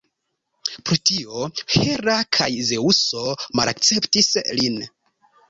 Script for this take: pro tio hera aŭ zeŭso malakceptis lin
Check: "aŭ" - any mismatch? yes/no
yes